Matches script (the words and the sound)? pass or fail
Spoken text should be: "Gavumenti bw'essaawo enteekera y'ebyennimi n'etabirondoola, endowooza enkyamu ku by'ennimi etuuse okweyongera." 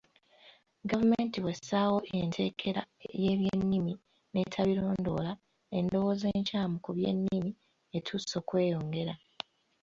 pass